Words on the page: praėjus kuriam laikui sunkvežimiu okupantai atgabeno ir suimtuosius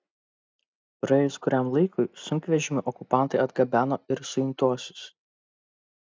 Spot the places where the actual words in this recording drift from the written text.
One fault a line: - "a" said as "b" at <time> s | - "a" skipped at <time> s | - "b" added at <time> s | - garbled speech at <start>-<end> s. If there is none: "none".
none